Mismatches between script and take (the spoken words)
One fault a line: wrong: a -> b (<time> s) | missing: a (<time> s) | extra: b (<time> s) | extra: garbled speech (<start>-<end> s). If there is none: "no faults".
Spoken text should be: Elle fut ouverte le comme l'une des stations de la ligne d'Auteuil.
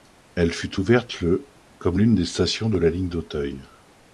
no faults